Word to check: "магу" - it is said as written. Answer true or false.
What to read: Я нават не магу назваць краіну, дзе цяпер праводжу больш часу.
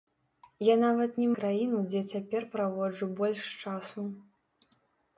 false